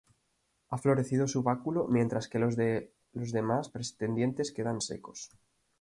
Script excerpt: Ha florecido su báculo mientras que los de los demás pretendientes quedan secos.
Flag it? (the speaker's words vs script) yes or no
no